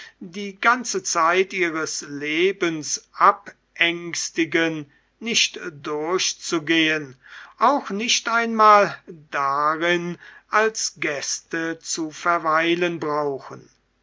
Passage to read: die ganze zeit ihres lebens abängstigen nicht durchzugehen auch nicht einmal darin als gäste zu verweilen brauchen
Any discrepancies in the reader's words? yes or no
no